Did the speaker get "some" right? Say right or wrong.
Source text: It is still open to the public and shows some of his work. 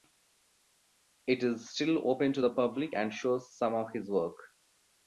right